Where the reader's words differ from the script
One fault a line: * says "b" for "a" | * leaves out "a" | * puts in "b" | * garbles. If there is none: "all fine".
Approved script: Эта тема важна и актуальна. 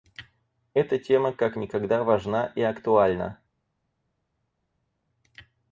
* puts in "как никогда"